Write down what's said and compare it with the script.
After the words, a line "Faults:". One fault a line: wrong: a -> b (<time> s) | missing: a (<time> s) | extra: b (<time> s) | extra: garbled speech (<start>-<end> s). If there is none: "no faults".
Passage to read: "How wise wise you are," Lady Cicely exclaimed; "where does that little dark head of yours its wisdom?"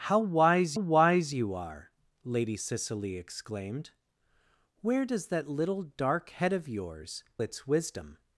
"How wise wise you are," Lady Cicely exclaimed; "where does that little dark head of yours its wisdom?"
Faults:
no faults